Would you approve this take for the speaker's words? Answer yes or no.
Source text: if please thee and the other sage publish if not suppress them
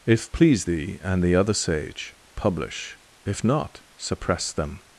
yes